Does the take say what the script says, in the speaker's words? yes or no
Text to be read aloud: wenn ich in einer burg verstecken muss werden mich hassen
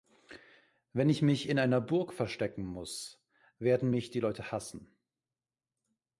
no